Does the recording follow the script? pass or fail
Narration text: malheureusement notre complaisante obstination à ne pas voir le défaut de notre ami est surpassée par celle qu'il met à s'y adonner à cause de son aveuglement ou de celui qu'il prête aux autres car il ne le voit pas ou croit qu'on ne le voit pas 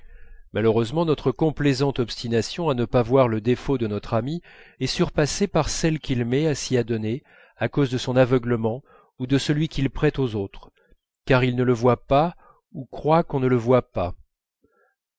pass